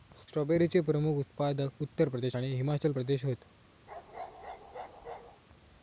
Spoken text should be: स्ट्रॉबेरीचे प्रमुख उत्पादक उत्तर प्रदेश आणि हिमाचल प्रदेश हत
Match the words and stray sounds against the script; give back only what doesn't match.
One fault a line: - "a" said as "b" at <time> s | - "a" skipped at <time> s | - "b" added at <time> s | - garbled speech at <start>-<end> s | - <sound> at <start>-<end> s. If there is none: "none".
- bark at 3.9-5.4 s